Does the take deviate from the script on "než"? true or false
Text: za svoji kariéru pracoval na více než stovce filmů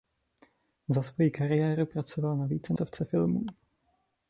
true